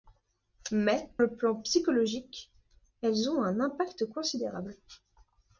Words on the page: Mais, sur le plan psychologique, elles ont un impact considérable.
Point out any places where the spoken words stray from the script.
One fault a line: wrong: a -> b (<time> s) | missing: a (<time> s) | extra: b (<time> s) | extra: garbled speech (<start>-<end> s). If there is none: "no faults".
missing: sur (1.1 s)